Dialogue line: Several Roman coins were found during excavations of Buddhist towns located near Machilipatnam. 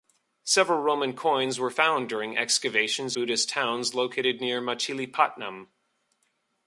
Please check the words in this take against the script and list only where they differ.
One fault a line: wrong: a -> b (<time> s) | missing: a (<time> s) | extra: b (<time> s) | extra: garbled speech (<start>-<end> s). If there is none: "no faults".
missing: of (3.2 s)